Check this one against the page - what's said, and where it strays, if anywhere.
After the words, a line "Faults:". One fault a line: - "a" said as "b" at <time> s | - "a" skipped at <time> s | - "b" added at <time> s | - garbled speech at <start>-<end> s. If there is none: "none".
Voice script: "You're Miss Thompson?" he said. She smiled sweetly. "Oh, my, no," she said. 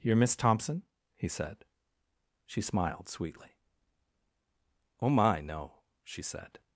"You're Miss Thompson?" he said. She smiled sweetly. "Oh, my, no," she said.
Faults:
none